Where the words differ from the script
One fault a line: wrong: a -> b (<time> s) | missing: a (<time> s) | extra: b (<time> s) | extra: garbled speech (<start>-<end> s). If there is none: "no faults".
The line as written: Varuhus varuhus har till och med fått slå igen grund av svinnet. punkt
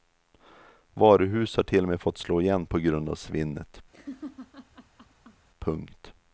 missing: varuhus (1.6 s)
extra: på (2.6 s)